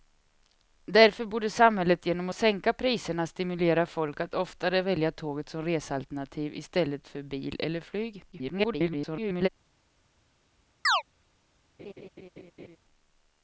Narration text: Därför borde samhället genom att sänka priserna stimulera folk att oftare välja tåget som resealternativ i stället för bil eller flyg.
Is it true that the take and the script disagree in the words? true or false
true